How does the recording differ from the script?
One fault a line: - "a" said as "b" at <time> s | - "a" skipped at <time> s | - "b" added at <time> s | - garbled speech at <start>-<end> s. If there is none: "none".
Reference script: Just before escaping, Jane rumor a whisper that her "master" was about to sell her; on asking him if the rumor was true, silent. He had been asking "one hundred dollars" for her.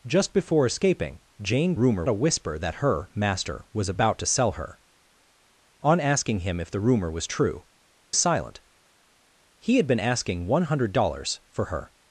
none